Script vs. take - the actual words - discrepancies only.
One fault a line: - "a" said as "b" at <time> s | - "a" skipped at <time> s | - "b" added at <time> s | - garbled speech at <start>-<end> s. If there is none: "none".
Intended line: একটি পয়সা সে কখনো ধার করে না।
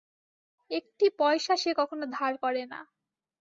none